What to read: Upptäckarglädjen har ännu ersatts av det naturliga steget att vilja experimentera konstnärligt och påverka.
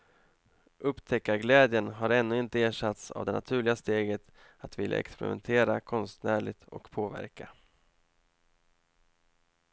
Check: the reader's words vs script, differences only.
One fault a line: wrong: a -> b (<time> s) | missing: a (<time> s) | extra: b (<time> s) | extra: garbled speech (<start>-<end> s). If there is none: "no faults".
extra: inte (2.4 s)